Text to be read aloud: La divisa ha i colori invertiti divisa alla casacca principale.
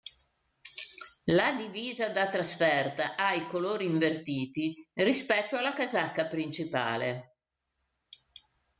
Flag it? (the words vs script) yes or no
yes